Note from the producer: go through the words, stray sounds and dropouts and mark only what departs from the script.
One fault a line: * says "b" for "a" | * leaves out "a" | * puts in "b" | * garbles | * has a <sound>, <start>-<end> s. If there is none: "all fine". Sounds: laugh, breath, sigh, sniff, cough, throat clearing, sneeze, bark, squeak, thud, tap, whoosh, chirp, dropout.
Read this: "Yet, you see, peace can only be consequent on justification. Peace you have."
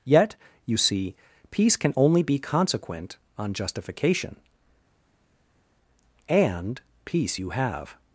* puts in "And"